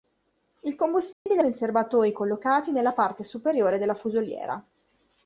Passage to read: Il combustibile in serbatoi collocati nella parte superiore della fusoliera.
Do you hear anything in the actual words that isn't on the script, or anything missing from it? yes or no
no